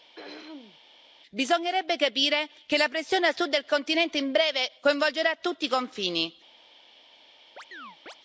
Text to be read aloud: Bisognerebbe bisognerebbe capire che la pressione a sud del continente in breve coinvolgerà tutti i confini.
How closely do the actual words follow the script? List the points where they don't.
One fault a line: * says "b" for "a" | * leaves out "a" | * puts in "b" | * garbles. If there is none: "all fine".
* leaves out "bisognerebbe"